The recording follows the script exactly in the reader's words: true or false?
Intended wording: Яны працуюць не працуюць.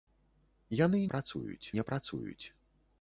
true